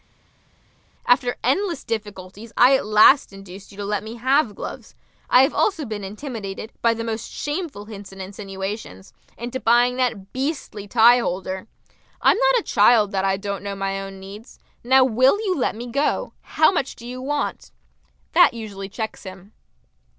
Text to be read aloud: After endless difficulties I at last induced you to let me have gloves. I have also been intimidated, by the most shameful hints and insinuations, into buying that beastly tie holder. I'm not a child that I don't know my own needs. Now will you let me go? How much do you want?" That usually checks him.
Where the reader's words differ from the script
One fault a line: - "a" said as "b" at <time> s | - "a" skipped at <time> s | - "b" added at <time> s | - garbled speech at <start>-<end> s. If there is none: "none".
none